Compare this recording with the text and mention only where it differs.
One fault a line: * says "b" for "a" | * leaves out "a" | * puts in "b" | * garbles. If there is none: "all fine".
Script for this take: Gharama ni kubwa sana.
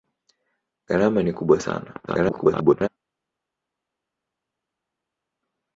* garbles